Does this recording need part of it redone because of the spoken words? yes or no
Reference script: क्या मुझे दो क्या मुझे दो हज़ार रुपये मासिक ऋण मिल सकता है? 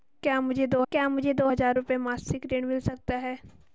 no